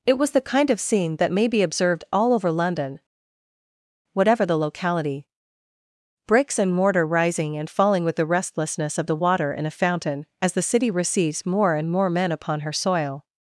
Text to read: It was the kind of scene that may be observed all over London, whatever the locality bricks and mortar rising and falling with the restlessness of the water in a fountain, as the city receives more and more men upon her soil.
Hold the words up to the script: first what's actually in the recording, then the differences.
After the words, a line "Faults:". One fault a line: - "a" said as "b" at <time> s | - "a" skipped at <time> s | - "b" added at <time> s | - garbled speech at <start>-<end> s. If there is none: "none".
It was the kind of scene that may be observed all over London, whatever the locality bricks and mortar rising and falling with the restlessness of the water in a fountain, as the city receives more and more men upon her soil.
Faults:
none